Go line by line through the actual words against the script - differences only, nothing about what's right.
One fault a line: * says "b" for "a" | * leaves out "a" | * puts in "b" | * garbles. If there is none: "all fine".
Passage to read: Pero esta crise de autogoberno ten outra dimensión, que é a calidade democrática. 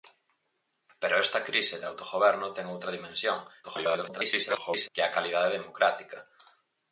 * garbles